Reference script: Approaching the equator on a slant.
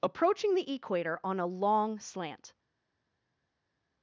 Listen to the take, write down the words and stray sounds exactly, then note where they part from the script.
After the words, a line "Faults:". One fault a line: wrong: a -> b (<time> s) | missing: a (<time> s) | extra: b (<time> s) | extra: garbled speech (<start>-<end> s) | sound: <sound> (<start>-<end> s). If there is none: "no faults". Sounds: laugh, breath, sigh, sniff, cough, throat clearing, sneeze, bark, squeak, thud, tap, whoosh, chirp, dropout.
Approaching the equator on a long slant.
Faults:
extra: long (1.4 s)